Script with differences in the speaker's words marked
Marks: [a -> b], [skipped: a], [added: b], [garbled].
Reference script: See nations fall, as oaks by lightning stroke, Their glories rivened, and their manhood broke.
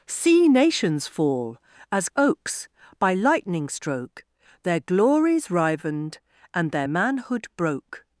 See nations fall, as oaks by lightning stroke, Their glories rivened, and their manhood broke.